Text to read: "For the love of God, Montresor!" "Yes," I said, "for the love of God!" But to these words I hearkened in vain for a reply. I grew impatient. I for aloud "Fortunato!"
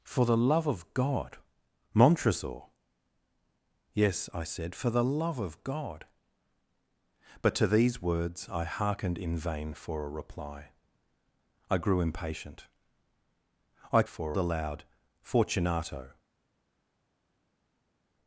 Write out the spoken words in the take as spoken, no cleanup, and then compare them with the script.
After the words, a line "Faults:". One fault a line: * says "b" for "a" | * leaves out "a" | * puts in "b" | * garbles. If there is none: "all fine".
"For the love of God, Montresor!" "Yes," I said, "for the love of God!" But to these words I hearkened in vain for a reply. I grew impatient. I for aloud "Fortunato!"
Faults:
all fine